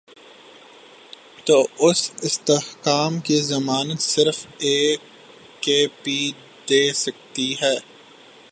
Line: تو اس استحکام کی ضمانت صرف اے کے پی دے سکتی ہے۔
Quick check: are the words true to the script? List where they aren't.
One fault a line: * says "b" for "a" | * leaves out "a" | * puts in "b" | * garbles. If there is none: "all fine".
all fine